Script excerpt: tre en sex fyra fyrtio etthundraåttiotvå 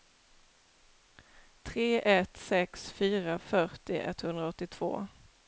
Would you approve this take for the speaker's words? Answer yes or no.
no